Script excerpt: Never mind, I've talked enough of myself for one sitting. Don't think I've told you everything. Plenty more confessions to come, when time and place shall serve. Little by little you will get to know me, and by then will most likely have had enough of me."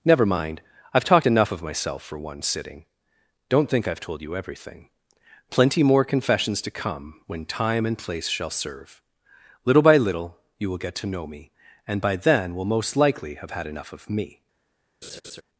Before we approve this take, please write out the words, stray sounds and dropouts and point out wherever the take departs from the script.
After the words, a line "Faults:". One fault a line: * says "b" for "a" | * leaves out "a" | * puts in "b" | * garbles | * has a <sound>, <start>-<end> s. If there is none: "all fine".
Never mind, I've talked enough of myself for one sitting. Don't think I've told you everything. Plenty more confessions to come, when time and place shall serve. Little by little you will get to know me, and by then will most likely have had enough of me."
Faults:
* has a laugh, 15.0-15.4 s